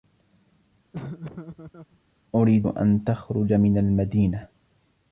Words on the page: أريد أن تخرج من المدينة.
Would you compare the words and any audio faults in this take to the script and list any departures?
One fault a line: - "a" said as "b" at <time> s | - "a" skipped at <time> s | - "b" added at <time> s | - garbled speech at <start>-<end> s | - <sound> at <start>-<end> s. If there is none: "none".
- laugh at 0.9-2.0 s